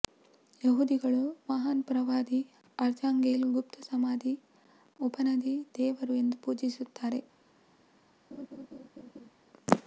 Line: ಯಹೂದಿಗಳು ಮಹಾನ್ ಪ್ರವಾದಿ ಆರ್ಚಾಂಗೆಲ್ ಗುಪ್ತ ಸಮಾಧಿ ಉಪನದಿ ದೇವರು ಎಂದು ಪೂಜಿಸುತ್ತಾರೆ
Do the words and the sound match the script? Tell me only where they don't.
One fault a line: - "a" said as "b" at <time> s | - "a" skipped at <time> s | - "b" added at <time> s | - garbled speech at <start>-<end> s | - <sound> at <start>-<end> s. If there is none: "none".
- laugh at 8.3-9.3 s